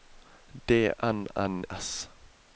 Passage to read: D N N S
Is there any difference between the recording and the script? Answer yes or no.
no